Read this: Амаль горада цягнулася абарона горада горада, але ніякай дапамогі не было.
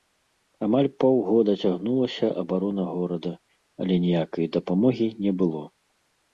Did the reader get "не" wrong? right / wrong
right